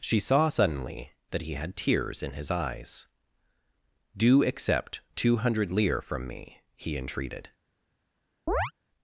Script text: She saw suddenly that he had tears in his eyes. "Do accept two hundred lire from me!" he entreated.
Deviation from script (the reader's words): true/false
false